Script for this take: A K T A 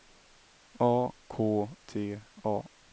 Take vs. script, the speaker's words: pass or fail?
pass